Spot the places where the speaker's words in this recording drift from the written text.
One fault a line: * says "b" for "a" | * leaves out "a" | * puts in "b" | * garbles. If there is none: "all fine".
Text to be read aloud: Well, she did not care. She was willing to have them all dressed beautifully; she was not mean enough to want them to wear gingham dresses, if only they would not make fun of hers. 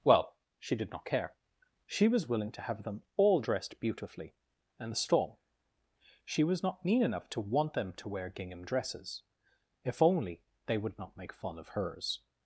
* puts in "and the storm"